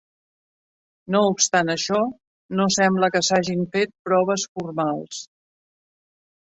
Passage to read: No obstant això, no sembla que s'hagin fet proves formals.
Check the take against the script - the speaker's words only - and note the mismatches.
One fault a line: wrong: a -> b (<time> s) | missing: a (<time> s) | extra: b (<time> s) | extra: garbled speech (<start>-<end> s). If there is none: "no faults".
no faults